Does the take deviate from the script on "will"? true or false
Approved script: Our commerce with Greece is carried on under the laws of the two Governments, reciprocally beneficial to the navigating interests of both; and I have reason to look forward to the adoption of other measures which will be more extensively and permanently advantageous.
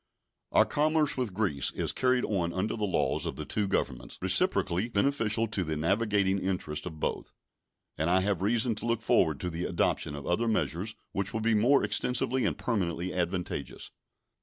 false